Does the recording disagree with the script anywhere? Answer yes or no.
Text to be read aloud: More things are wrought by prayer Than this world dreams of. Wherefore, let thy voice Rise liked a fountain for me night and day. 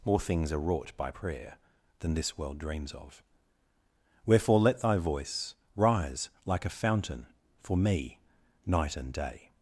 yes